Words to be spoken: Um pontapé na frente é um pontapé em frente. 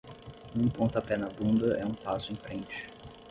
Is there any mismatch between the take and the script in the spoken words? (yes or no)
yes